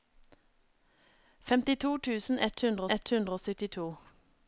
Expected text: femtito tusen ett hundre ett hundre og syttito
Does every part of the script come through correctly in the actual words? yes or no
yes